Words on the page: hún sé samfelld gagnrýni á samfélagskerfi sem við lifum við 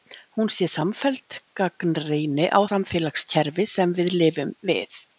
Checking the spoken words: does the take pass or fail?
pass